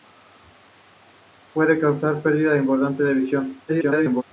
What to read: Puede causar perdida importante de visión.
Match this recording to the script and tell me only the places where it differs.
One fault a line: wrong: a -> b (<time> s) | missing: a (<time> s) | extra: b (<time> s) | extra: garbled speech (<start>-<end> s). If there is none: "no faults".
extra: garbled speech (3.7-4.2 s)